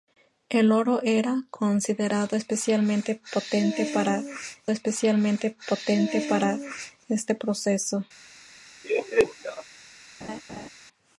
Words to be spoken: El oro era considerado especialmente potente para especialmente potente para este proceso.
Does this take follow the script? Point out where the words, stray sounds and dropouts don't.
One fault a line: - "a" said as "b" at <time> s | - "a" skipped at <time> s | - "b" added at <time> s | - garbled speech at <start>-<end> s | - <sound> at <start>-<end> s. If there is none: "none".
- laugh at 8.8-9.6 s
- laugh at 10.2-10.7 s